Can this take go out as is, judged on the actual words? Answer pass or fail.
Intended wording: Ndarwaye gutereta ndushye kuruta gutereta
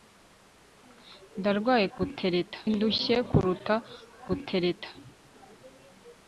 pass